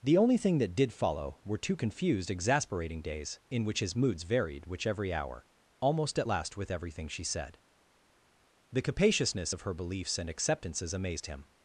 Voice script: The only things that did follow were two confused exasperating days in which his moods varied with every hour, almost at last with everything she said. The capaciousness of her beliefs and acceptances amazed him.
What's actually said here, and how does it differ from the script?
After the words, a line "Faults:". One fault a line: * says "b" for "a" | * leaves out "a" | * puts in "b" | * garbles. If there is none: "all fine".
The only thing that did follow were two confused exasperating days in which his moods varied which every hour, almost at last with everything she said. The capaciousness of her beliefs and acceptances amazed him.
Faults:
* says "thing" for "things"
* says "which" for "with"